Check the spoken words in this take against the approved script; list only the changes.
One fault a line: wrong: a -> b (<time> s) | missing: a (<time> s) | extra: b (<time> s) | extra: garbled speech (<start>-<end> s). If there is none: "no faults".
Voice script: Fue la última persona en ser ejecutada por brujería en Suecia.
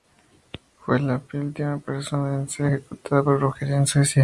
no faults